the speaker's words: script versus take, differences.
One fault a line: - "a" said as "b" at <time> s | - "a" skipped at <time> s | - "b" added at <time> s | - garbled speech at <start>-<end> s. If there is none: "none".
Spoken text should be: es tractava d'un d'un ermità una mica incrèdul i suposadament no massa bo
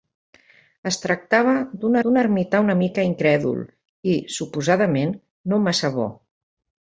none